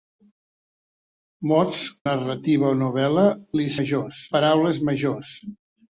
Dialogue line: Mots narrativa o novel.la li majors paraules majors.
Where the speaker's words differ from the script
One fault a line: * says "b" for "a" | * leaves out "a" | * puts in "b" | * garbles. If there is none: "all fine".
all fine